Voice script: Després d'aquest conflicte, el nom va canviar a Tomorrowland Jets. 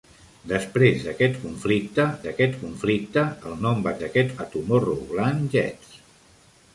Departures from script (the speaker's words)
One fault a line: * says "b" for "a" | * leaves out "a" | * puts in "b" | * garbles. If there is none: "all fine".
* puts in "d'aquest conflicte"
* says "d'aquest" for "canviar"